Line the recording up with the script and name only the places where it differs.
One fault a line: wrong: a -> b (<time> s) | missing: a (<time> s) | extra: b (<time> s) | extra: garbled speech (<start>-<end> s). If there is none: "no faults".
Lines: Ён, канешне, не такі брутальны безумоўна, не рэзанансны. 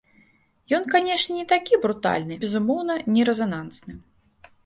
no faults